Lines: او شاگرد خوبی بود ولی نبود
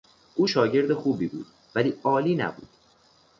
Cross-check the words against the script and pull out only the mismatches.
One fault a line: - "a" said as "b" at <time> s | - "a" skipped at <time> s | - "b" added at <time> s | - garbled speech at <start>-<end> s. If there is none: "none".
- "عالی" added at 2.0 s